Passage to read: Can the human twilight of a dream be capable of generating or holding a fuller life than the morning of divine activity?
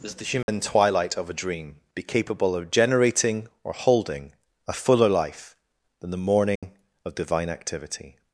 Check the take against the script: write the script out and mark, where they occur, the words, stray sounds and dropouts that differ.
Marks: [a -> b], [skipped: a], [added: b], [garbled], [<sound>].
[Can -> Does] the human [dropout] twilight of a dream be capable of generating or holding a fuller life than the morning [dropout] of divine activity?